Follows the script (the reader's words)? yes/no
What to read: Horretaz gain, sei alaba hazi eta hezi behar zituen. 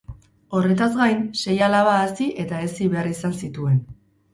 no